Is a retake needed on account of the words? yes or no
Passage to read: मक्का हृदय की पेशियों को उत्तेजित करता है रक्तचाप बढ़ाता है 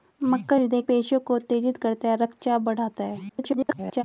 yes